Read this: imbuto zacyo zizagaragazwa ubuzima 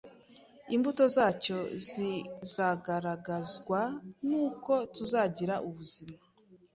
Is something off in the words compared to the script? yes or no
yes